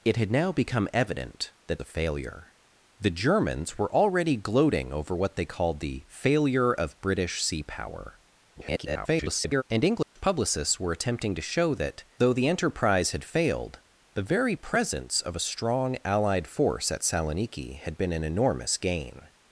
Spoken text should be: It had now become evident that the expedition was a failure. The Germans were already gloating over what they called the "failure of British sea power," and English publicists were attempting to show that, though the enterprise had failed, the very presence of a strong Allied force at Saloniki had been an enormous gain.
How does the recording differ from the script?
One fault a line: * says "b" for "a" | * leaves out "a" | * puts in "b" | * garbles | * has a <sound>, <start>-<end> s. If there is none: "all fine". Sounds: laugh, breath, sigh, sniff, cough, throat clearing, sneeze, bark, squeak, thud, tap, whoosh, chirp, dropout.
* leaves out "the expedition was"
* garbles
* has a dropout, 10.0-10.2 s